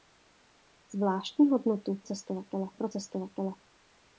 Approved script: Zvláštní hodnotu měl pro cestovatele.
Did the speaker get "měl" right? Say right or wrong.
wrong